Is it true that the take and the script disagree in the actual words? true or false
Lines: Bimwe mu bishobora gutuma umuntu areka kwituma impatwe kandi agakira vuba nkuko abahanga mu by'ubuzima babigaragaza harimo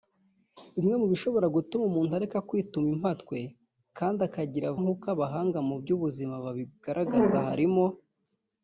true